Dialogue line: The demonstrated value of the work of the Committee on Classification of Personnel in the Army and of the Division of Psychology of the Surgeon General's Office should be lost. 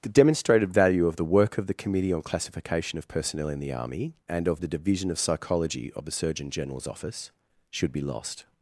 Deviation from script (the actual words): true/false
false